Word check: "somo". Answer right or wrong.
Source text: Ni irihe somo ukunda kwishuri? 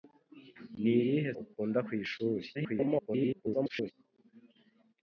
wrong